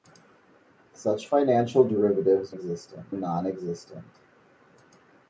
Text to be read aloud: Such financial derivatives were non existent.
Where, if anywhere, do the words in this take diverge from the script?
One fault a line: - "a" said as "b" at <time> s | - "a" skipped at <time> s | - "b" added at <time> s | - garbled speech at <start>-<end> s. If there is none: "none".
- "were" said as "existent" at 2.5 s